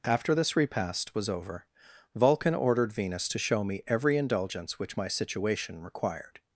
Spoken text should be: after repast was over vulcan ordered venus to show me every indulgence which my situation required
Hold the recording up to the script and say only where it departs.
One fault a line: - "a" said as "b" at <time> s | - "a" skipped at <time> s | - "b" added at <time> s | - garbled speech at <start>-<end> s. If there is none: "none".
- "this" added at 0.3 s